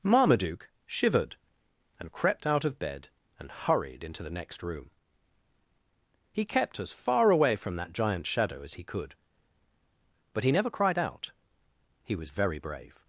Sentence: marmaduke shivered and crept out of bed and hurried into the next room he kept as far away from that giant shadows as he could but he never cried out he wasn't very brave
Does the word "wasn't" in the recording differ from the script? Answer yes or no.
yes